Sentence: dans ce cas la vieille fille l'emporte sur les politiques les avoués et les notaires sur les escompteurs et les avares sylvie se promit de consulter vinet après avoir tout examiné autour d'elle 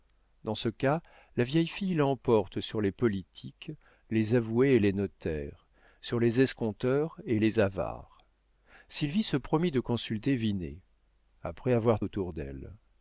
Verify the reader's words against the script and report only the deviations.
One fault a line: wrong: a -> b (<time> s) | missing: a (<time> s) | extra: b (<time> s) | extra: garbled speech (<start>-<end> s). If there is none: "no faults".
missing: tout examiné (12.0 s)